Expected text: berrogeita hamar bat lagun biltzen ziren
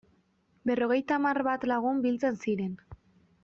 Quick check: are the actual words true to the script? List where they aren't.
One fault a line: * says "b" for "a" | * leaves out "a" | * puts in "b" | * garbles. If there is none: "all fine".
all fine